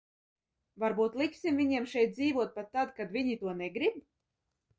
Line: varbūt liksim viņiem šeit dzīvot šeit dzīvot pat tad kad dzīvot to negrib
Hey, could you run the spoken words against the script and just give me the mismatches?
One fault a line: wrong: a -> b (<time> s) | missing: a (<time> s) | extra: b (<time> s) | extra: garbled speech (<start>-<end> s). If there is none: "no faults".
missing: šeit dzīvot (2.6 s)
wrong: dzīvot -> viņi (3.2 s)